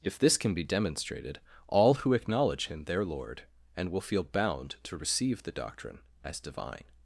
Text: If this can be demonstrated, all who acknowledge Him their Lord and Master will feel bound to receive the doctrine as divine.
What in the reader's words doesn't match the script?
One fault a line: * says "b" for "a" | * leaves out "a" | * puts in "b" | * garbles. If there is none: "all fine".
* leaves out "Master"